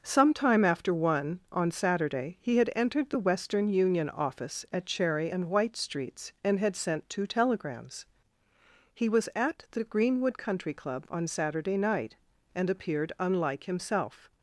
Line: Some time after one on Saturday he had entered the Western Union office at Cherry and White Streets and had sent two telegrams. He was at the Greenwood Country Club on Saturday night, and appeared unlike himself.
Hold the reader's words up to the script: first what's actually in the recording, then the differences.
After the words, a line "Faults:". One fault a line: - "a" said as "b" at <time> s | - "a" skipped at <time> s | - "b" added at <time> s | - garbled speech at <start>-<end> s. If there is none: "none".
Some time after one on Saturday he had entered the Western Union office at Cherry and White Streets and had sent two telegrams. He was at the Greenwood Country Club on Saturday night, and appeared unlike himself.
Faults:
none